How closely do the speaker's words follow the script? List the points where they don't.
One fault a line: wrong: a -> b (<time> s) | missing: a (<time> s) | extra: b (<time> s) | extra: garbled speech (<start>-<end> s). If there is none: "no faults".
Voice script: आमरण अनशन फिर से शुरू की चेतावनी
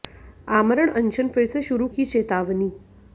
no faults